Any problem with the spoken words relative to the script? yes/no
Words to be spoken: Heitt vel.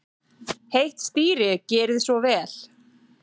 yes